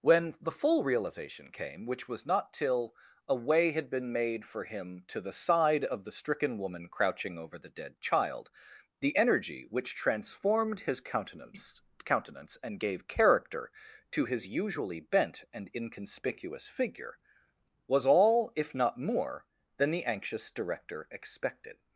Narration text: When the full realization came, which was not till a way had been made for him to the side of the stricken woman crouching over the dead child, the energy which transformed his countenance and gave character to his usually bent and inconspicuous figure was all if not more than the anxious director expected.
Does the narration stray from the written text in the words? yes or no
yes